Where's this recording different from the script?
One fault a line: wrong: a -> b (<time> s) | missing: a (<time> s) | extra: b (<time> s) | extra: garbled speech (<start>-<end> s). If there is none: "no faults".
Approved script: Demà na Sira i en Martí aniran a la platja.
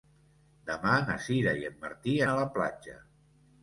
missing: aniran (2.1 s)